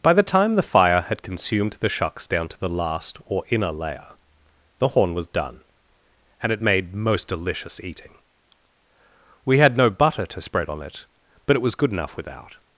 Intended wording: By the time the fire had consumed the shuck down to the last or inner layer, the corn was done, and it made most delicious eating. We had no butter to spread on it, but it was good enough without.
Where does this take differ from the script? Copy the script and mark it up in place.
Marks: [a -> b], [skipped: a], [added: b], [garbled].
By the time the fire had consumed the [shuck -> shucks] down to the last or inner layer, the [corn -> horn] was done, and it made most delicious eating. We had no butter to spread on it, but it was good enough without.